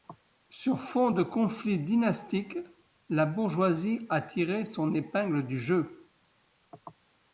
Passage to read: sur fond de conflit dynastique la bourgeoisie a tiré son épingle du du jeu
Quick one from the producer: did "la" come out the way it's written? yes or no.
yes